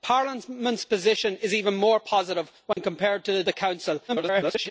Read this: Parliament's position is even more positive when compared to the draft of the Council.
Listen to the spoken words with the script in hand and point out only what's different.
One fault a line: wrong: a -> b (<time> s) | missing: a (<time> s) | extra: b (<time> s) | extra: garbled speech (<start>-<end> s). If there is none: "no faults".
missing: draft of (3.4 s)
extra: garbled speech (4.1-4.7 s)